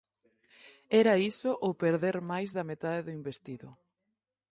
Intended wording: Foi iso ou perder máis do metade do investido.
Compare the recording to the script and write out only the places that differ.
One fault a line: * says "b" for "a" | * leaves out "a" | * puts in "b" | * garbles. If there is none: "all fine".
* says "Era" for "Foi"
* says "da" for "do"